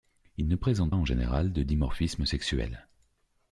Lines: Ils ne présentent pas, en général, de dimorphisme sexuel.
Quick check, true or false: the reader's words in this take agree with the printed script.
false